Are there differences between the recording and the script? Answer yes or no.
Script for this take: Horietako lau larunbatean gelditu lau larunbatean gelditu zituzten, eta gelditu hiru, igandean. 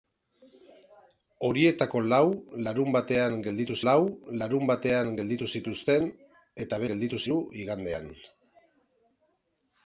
no